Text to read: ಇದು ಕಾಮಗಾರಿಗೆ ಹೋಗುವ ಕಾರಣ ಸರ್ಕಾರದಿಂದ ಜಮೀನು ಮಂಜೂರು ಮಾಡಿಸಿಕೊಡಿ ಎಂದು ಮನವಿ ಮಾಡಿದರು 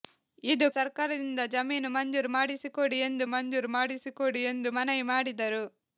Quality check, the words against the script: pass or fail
fail